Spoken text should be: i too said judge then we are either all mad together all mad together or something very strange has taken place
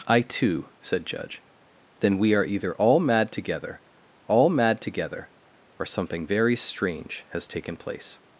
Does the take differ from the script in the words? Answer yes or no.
no